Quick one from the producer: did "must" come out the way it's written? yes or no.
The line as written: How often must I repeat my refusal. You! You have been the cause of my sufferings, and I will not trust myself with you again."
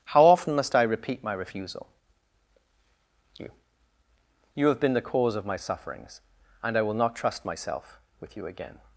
yes